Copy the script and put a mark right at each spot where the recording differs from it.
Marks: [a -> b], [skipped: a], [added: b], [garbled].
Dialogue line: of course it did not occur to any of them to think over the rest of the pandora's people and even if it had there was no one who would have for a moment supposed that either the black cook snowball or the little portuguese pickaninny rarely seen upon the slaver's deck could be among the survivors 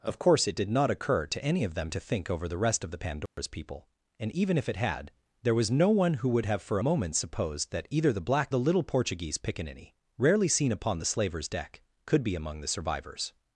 of course it did not occur to any of them to think over the rest of the pandora's people and even if it had there was no one who would have for [skipped: a] moment supposed that either the black [skipped: cook snowball or] the little portuguese pickaninny rarely seen upon the slaver's deck could be among the survivors